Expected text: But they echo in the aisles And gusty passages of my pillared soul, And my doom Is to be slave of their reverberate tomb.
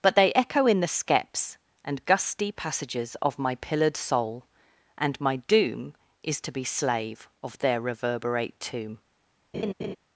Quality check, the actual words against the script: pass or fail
fail